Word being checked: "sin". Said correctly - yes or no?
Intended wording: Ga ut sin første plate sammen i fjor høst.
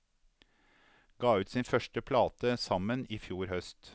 yes